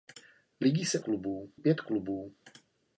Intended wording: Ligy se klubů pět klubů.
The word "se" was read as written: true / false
true